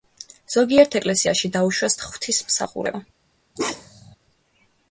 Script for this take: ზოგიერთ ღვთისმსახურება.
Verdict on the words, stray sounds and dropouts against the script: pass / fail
fail